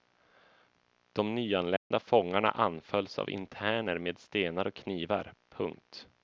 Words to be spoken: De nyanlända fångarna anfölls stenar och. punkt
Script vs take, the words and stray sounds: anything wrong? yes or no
yes